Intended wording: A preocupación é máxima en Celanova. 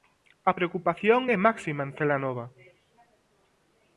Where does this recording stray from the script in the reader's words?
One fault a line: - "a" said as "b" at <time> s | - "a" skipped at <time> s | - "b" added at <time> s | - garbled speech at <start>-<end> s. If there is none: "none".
none